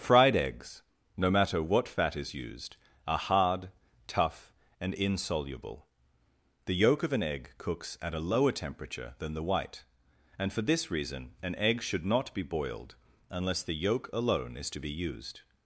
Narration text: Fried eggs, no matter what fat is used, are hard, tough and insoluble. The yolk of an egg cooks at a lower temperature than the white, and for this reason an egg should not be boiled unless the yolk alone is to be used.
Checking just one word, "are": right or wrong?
right